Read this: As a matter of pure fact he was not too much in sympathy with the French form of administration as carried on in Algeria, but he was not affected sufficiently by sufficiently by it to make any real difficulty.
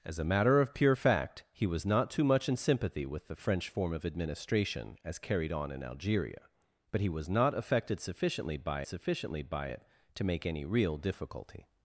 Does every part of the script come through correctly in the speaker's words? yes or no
yes